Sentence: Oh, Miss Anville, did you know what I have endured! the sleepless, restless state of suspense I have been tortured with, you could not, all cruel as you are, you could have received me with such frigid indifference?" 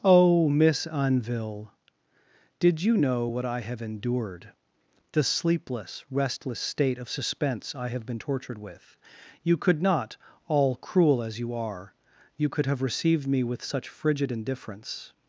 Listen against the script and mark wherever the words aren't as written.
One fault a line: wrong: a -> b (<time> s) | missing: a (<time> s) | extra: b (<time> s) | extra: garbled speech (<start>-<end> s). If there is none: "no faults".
no faults